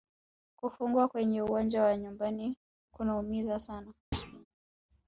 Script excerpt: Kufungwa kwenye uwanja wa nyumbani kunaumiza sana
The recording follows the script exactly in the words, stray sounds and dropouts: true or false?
false